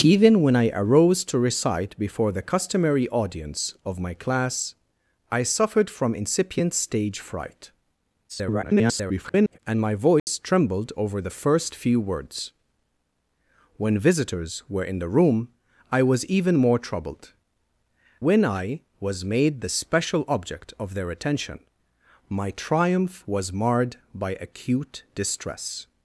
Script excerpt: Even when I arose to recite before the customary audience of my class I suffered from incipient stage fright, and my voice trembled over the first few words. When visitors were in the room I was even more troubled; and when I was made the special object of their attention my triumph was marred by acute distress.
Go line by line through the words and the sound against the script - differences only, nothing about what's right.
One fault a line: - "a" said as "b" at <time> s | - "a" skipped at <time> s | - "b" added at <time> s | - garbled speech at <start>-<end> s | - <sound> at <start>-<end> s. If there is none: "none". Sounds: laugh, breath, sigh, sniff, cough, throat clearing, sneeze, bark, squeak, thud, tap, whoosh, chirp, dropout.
- garbled speech at 8.3-9.6 s
- dropout at 10.2-10.3 s
- "and" skipped at 17.3 s